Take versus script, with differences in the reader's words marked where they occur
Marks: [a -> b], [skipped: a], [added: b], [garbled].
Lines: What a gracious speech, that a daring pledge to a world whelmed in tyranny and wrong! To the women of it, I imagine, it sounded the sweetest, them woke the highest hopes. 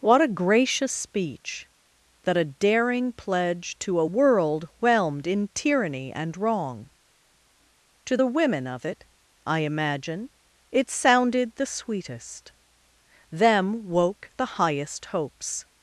What a gracious speech, that a daring pledge to a world whelmed in tyranny and wrong! To the women of it, I imagine, it sounded the sweetest, them woke the highest hopes.